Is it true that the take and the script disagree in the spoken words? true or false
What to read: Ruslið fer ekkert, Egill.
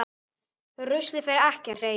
false